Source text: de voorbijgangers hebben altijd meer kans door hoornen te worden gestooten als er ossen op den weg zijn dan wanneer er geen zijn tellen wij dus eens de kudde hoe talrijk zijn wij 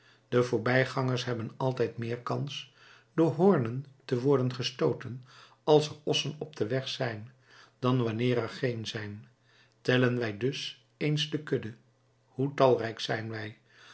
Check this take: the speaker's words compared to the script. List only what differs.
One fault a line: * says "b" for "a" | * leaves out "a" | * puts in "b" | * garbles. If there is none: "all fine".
all fine